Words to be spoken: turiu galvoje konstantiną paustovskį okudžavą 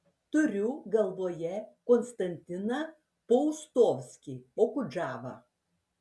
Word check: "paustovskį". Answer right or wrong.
right